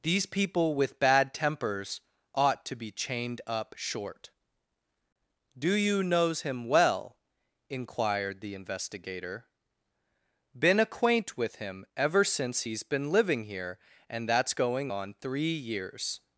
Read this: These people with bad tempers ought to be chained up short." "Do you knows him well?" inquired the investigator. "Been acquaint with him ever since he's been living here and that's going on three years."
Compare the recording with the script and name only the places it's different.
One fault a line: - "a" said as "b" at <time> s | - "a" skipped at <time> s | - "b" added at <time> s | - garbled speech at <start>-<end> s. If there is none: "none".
none